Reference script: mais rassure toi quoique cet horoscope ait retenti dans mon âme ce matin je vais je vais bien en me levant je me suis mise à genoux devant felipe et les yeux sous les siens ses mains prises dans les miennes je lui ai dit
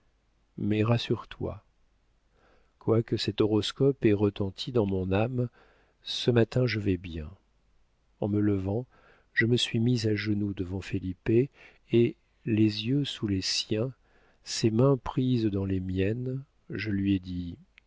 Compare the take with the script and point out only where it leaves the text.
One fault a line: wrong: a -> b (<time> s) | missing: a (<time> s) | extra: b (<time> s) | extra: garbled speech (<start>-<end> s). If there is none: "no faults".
missing: je vais (7.0 s)